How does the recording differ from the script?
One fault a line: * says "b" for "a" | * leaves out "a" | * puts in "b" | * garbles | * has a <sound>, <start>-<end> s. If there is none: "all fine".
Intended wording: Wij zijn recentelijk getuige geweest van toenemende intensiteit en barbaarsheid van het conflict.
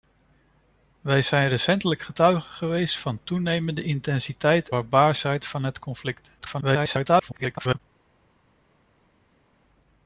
* leaves out "en"
* garbles